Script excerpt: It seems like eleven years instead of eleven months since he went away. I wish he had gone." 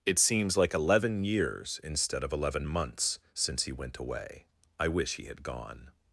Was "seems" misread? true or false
false